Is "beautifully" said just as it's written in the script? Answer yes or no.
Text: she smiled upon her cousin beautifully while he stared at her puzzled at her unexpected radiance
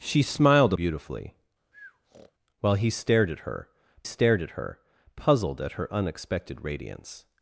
no